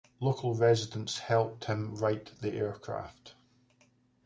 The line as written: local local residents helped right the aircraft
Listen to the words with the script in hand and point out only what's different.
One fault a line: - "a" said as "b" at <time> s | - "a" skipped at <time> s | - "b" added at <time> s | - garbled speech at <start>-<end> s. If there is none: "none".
- "local" skipped at 0.6 s
- "him" added at 1.6 s